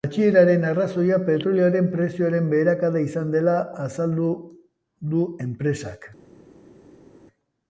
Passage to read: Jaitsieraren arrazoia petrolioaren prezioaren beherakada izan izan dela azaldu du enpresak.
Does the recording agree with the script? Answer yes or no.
no